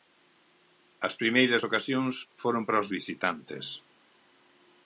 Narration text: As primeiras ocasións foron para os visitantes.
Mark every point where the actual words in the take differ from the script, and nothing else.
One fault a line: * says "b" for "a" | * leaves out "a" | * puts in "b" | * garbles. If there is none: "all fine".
all fine